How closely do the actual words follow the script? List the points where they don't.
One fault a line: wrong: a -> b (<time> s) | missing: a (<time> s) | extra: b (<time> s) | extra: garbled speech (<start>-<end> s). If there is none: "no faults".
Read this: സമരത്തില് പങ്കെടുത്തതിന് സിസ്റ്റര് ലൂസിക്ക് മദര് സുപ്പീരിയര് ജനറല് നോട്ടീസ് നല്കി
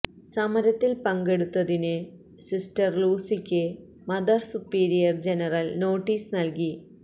no faults